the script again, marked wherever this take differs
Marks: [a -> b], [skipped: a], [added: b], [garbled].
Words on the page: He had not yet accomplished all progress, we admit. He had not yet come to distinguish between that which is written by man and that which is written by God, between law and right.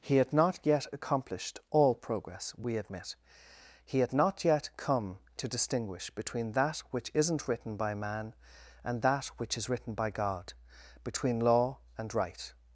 He had not yet accomplished all progress, we admit. He had not yet come to distinguish between that which [is -> isn't] written by man and that which is written by God, between law and right.